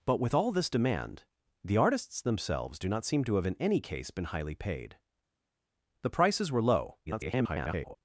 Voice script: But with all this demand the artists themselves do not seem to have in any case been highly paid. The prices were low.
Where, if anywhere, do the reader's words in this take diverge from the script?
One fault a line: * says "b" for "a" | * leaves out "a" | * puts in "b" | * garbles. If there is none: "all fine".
* garbles